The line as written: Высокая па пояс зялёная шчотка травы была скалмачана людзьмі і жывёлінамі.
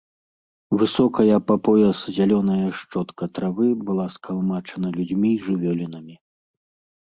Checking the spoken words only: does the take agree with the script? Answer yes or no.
yes